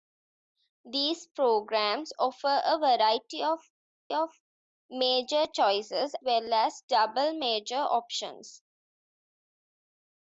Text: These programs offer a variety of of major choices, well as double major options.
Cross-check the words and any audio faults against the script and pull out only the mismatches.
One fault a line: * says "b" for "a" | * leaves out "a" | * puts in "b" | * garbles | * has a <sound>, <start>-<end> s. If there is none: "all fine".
all fine